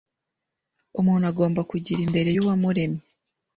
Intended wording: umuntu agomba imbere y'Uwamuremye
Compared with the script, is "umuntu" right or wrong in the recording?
right